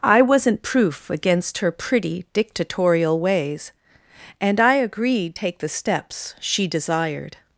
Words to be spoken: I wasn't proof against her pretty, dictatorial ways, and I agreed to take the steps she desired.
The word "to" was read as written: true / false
false